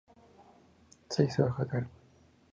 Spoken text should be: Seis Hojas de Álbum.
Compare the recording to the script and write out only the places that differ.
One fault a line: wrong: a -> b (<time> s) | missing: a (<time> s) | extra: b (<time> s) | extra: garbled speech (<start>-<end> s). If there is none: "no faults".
no faults